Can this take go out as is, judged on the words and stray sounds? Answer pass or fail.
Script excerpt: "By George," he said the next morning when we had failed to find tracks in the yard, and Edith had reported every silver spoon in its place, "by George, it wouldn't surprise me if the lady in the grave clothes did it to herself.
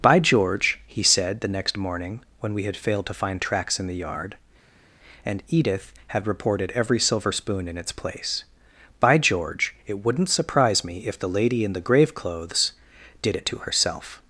pass